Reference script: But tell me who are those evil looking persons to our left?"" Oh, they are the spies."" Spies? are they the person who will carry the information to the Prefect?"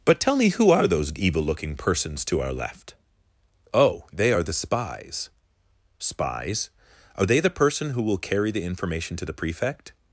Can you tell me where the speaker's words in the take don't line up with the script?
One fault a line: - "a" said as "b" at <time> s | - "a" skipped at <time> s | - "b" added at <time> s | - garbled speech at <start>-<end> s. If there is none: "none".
none